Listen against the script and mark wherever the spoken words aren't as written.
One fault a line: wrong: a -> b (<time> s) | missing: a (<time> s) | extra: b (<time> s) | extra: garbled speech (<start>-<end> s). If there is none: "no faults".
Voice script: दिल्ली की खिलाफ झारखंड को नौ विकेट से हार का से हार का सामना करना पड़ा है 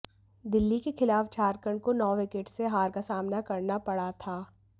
wrong: की -> के (0.8 s)
missing: से हार का (3.0 s)
wrong: है -> था (4.2 s)